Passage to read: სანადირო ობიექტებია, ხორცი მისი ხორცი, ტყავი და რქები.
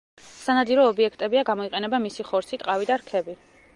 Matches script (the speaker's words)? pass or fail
fail